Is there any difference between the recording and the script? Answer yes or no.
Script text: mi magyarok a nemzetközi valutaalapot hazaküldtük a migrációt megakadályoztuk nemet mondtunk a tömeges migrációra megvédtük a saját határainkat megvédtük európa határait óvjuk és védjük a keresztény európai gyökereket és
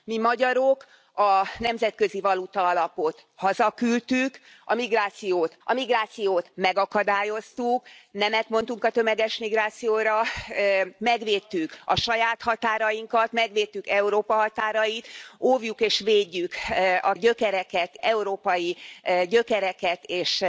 yes